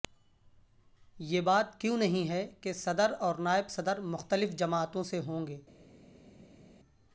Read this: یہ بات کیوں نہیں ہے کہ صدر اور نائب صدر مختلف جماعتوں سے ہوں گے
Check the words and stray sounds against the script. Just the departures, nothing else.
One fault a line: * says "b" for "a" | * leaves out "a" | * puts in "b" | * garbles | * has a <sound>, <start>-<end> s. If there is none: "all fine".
all fine